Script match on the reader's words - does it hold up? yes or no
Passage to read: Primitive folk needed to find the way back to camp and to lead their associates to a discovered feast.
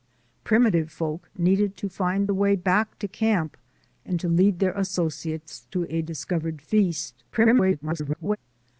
no